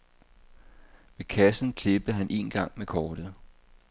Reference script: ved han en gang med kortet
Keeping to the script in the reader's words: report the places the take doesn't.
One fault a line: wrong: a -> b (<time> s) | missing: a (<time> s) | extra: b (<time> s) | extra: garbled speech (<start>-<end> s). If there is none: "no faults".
extra: kassen klippede (1.2 s)